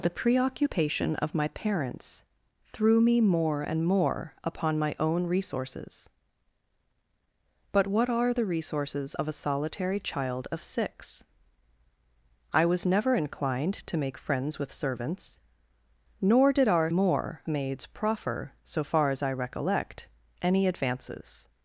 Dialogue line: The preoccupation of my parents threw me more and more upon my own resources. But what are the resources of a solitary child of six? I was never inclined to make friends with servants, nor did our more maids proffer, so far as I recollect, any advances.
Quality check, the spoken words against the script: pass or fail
pass